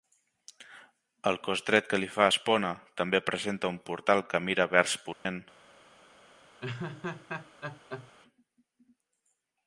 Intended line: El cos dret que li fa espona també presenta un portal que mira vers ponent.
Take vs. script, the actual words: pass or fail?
pass